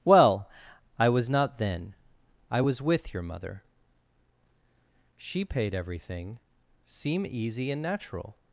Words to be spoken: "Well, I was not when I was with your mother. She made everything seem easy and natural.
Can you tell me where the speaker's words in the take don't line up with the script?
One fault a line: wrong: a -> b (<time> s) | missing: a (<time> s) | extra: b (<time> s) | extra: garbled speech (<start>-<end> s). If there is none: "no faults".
wrong: when -> then (1.6 s)
wrong: made -> paid (5.4 s)